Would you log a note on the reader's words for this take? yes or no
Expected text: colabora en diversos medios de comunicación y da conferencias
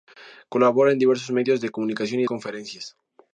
yes